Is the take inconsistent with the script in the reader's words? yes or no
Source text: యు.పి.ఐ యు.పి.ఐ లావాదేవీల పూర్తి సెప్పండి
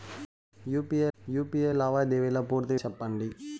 no